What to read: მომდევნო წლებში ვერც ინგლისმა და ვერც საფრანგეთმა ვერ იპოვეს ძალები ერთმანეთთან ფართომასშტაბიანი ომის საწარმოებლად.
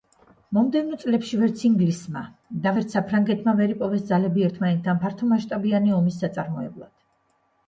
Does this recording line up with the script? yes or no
yes